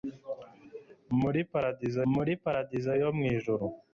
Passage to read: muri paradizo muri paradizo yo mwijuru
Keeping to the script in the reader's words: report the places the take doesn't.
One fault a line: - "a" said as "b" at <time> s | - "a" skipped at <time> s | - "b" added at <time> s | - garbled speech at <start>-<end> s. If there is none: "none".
none